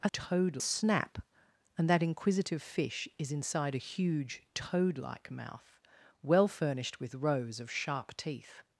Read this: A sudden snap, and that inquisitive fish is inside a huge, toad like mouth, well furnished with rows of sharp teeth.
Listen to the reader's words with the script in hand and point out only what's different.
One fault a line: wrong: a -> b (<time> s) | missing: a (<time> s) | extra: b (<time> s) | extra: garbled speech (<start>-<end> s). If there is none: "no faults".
wrong: sudden -> toad (0.1 s)